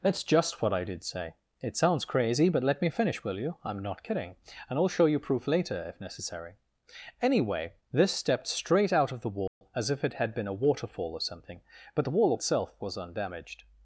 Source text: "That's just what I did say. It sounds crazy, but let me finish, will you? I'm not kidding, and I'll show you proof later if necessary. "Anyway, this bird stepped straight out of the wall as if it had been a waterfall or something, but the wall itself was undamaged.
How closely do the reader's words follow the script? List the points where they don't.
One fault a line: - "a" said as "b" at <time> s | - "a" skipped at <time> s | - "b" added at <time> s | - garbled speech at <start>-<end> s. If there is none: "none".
- "bird" skipped at 8.1 s